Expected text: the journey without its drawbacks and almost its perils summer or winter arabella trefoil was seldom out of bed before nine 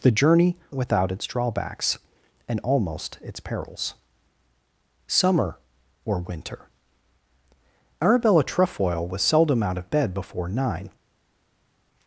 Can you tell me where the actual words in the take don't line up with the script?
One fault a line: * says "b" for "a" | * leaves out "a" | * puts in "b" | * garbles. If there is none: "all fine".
all fine